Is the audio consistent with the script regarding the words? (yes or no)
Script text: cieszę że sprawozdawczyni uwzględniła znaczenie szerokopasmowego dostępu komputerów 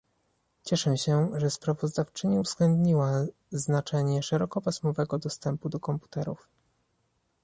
no